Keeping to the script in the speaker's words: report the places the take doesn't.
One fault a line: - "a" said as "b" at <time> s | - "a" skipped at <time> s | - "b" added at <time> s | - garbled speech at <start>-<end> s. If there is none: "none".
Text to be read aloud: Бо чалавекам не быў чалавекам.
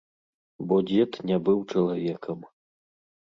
- "чалавекам" said as "дзед" at 0.9 s